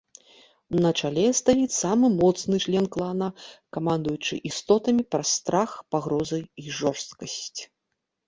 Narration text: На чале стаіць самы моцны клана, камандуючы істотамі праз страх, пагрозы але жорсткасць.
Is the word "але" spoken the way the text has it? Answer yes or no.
no